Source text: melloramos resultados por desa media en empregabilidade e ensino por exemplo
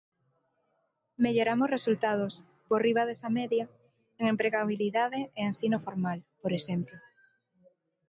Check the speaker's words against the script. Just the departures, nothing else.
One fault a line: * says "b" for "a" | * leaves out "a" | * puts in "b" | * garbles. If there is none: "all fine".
* puts in "riba"
* puts in "formal"